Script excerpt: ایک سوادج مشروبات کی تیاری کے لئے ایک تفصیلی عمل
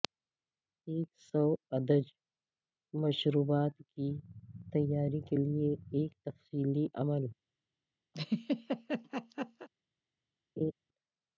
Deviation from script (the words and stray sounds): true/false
true